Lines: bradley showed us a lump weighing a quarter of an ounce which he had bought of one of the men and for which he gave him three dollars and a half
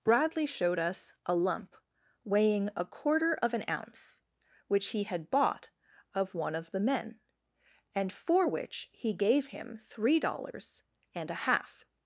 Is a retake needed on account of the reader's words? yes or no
no